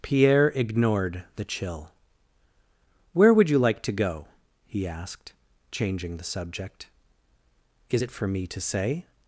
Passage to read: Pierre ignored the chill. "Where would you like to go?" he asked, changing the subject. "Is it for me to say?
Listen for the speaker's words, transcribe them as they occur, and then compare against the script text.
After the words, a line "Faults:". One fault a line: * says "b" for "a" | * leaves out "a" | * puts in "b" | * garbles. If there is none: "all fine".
Pierre ignored the chill. "Where would you like to go?" he asked, changing the subject. "Is it for me to say?
Faults:
all fine